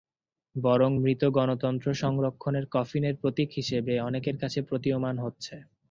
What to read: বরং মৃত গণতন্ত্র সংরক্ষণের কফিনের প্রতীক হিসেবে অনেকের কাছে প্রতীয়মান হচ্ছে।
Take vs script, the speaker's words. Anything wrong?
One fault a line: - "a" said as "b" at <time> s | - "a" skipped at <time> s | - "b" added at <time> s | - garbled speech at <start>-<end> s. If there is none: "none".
none